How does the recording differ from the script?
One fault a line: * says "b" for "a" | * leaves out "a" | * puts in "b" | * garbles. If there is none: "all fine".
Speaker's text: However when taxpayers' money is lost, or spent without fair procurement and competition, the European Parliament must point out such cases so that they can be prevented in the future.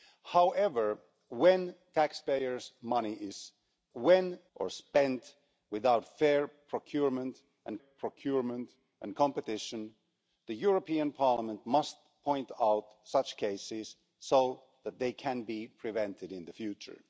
* says "when" for "lost"
* puts in "procurement and"